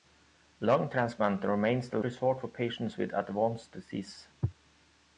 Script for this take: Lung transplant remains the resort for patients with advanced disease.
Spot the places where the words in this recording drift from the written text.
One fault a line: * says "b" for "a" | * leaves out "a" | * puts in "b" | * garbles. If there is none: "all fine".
all fine